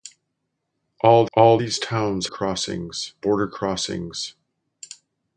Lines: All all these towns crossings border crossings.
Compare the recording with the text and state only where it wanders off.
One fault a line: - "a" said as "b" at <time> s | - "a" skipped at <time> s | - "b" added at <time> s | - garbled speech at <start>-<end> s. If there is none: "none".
none